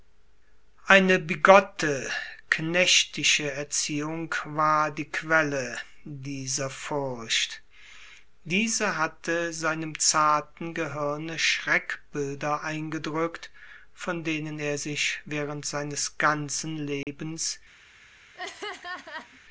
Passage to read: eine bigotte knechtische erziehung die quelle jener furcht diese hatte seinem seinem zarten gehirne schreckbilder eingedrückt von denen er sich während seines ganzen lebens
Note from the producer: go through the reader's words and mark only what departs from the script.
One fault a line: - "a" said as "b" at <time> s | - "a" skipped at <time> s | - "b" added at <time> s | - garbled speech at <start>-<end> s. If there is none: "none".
- "war" added at 4.5 s
- "jener" said as "dieser" at 6.0 s
- "seinem" skipped at 10.0 s